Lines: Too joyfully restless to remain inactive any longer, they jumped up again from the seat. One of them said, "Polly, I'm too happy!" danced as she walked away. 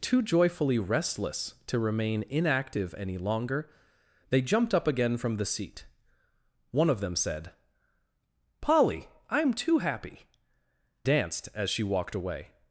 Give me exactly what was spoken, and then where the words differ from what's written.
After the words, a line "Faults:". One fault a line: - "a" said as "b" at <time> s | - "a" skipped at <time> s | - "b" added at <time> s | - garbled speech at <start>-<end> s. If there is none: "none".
Too joyfully restless to remain inactive any longer, they jumped up again from the seat. One of them said, "Polly, I'm too happy!" danced as she walked away.
Faults:
none